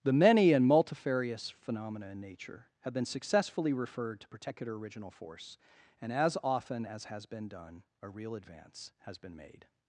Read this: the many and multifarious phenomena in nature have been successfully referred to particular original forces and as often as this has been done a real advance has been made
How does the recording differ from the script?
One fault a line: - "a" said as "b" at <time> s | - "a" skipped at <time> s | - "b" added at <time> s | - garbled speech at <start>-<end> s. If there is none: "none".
- "forces" said as "force" at 5.1 s
- "this" skipped at 7.1 s